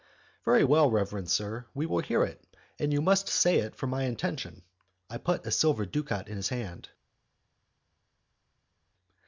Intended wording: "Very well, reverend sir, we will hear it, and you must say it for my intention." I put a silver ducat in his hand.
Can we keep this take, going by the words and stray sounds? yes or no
yes